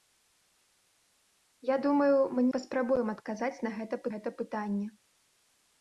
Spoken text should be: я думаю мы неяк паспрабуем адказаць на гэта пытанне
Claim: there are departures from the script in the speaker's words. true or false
true